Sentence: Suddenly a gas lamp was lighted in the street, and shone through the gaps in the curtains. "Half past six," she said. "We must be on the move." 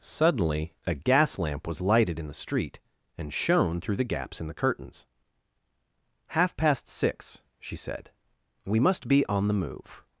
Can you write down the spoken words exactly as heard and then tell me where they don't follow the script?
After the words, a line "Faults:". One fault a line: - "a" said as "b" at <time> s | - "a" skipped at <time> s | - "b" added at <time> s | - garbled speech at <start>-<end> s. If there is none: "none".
Suddenly a gas lamp was lighted in the street, and shone through the gaps in the curtains. "Half past six," she said. "We must be on the move."
Faults:
none